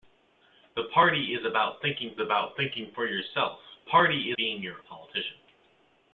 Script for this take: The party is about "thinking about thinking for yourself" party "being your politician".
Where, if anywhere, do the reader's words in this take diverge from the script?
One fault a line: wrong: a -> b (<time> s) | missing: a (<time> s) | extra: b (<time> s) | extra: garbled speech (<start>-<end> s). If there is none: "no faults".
no faults